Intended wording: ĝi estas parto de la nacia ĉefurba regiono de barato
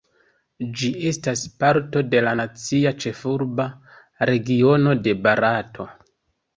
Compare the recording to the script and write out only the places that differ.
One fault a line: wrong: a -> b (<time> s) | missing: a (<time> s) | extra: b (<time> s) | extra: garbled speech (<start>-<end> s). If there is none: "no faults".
no faults